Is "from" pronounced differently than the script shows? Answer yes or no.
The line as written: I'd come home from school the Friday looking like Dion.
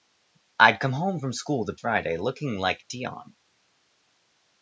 no